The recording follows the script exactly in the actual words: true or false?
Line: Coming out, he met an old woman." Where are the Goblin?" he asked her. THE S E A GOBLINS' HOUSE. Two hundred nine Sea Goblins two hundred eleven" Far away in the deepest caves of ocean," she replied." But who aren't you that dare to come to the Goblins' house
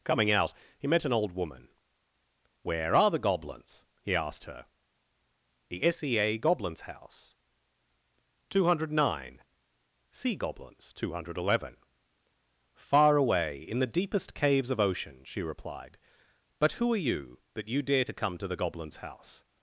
false